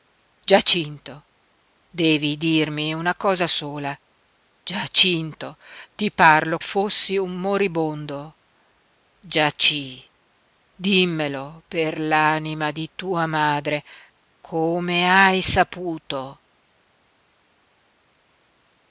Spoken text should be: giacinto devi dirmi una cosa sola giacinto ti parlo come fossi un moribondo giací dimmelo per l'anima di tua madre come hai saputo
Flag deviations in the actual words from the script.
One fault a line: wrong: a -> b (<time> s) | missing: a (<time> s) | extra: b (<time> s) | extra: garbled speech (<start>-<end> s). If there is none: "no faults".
missing: come (6.6 s)